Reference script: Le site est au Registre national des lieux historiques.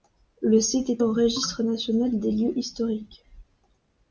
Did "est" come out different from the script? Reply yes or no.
no